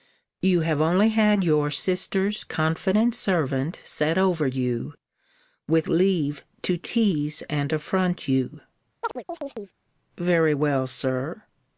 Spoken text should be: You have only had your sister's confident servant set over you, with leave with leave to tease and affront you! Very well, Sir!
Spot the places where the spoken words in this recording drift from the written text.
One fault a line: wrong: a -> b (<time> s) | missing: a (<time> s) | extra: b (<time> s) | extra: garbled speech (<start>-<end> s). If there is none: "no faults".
missing: with leave (6.4 s)